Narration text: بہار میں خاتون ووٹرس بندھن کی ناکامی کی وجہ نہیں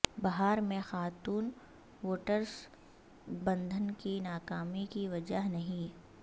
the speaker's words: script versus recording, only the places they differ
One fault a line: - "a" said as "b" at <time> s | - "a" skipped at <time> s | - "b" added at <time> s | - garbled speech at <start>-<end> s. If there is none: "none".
none